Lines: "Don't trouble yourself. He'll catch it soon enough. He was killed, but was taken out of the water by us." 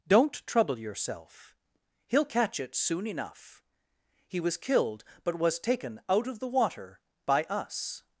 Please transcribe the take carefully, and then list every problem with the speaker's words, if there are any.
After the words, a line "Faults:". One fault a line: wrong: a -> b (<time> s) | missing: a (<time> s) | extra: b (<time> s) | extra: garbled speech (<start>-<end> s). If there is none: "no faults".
"Don't trouble yourself. He'll catch it soon enough. He was killed, but was taken out of the water by us."
Faults:
no faults